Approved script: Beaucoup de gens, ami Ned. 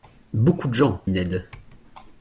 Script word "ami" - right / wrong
wrong